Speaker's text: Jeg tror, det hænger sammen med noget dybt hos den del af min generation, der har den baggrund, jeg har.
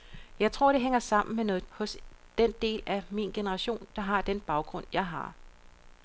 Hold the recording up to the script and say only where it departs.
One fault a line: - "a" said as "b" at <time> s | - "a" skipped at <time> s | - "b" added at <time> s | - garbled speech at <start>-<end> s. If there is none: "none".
- "dybt" skipped at 1.7 s